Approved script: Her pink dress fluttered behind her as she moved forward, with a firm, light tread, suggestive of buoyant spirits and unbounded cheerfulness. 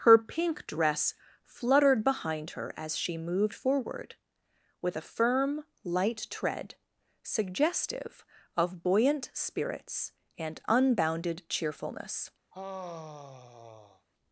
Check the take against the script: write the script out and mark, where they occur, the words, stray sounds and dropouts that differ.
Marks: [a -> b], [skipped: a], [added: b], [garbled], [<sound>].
Her pink dress fluttered behind her as she moved forward, with a firm, light tread, suggestive of buoyant spirits and unbounded cheerfulness. [sigh]